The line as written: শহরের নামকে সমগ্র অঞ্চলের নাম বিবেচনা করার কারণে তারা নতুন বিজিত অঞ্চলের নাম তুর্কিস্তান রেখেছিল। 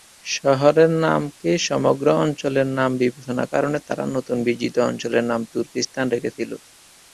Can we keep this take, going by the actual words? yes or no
no